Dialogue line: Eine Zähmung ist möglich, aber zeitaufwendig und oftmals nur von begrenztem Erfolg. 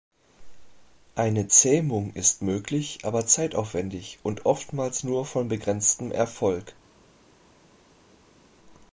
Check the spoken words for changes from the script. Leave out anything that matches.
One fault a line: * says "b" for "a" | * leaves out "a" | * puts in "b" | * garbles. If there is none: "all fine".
all fine